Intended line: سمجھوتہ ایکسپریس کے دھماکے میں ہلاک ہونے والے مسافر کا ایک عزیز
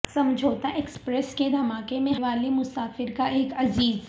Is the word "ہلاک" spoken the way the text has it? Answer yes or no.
no